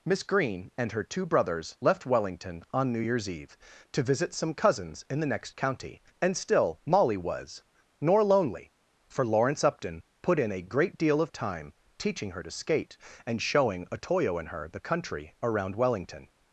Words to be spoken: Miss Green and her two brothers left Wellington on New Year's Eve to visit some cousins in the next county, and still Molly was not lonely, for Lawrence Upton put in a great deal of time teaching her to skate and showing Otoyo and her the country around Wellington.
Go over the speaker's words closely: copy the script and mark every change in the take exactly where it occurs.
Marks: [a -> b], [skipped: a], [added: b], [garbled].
Miss Green and her two brothers left Wellington on New Year's Eve to visit some cousins in the next county, and still Molly was [not -> nor] lonely, for Lawrence Upton put in a great deal of time teaching her to skate and showing Otoyo and her the country around Wellington.